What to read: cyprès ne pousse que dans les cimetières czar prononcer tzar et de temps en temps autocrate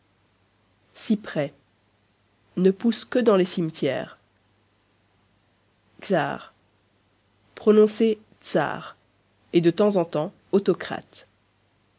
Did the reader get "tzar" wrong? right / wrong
right